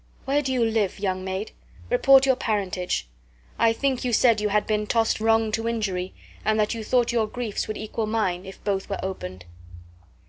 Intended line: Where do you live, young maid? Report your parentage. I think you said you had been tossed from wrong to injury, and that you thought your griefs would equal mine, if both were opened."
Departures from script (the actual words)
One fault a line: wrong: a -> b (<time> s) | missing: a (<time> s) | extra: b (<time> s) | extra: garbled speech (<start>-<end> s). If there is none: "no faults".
missing: from (5.2 s)